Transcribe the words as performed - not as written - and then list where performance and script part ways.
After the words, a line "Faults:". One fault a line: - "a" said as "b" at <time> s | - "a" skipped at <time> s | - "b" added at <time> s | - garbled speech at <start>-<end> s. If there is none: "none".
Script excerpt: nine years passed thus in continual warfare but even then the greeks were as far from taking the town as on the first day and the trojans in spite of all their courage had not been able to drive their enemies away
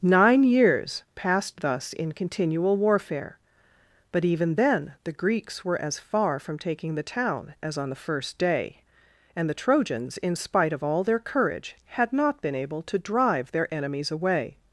nine years passed thus in continual warfare but even then the greeks were as far from taking the town as on the first day and the trojans in spite of all their courage had not been able to drive their enemies away
Faults:
none